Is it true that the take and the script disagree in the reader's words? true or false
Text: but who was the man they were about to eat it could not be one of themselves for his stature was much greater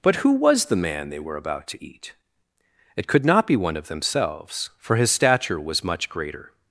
false